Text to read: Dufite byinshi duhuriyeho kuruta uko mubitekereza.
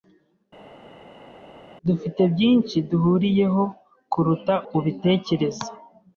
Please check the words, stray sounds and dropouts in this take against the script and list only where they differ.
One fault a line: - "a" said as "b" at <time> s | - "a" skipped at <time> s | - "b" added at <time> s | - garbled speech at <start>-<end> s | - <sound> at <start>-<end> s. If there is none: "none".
- "uko" skipped at 4.5 s